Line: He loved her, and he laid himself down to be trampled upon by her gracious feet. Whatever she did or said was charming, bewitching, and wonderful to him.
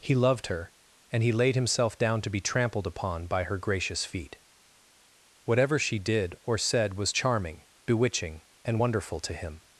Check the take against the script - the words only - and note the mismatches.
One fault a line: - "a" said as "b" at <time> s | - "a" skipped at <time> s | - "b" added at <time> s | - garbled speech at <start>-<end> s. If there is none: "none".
none